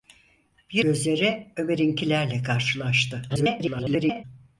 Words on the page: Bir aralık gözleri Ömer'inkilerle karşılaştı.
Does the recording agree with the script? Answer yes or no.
no